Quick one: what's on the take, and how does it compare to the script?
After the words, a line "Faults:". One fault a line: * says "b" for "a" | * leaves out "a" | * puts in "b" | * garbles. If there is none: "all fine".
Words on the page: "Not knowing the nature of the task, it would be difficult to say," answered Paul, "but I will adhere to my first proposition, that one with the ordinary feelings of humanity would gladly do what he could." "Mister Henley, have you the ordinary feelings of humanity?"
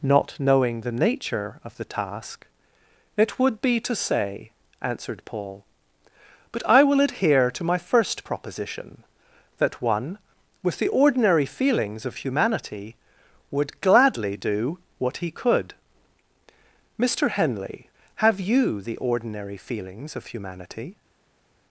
"Not knowing the nature of the task, it would be to say," answered Paul, "but I will adhere to my first proposition, that one with the ordinary feelings of humanity would gladly do what he could." "Mister Henley, have you the ordinary feelings of humanity?"
Faults:
* leaves out "difficult"